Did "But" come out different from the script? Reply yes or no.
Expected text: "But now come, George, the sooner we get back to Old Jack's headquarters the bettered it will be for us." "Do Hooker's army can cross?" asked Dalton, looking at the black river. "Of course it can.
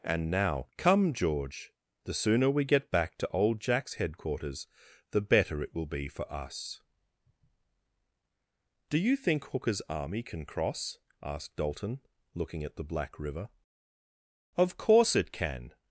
yes